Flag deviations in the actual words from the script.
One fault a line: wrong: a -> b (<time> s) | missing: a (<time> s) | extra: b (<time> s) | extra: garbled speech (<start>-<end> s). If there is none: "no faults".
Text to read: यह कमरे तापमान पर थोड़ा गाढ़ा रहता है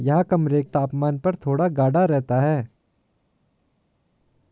no faults